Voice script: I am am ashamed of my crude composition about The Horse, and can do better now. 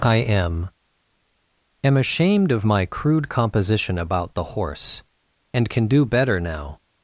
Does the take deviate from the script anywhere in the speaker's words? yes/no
no